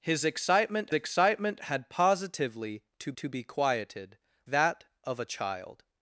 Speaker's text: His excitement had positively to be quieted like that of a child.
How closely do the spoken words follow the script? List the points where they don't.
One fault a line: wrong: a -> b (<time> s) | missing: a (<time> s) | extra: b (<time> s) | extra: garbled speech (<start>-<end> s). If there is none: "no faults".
extra: excitement (0.9 s)
extra: to (3.2 s)
missing: like (4.2 s)